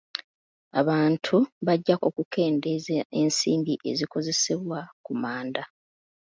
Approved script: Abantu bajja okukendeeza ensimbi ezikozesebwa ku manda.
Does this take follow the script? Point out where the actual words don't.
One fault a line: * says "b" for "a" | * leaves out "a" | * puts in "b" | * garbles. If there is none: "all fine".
all fine